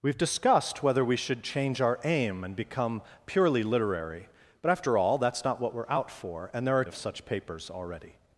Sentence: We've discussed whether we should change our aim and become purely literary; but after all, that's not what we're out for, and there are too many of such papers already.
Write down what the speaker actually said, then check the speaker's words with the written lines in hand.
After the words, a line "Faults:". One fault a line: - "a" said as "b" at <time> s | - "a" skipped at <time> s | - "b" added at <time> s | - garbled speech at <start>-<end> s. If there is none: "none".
We've discussed whether we should change our aim and become purely literary; but after all, that's not what we're out for, and there are of such papers already.
Faults:
- "too many" skipped at 6.8 s